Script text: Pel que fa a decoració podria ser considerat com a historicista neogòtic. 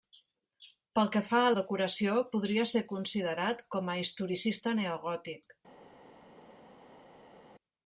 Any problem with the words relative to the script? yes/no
no